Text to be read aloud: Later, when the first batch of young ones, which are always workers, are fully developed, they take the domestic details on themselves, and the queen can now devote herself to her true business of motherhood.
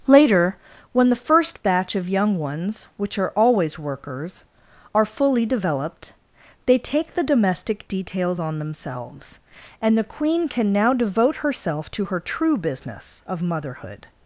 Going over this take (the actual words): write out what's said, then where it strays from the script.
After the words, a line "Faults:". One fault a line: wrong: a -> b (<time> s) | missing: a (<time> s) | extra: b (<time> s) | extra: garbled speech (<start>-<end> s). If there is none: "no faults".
Later, when the first batch of young ones, which are always workers, are fully developed, they take the domestic details on themselves, and the queen can now devote herself to her true business of motherhood.
Faults:
no faults